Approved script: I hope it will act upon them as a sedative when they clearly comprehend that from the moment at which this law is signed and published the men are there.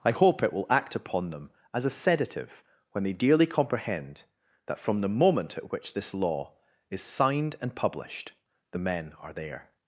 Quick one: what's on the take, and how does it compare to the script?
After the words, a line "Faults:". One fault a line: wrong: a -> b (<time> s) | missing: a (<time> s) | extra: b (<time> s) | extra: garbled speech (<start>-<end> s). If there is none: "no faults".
I hope it will act upon them as a sedative when they dearly comprehend that from the moment at which this law is signed and published the men are there.
Faults:
wrong: clearly -> dearly (3.1 s)